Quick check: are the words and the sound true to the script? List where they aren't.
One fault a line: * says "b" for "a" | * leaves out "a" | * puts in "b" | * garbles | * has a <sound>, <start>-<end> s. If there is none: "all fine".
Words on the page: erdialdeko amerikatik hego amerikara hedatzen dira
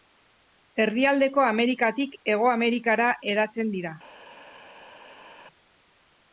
all fine